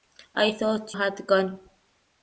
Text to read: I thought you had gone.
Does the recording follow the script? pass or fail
fail